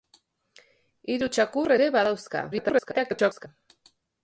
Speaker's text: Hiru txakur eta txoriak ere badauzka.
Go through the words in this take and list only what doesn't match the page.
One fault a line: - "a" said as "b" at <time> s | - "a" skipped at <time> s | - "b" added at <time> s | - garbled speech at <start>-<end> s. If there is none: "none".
- "eta txoriak" skipped at 1.8 s
- garbled speech at 2.5-3.5 s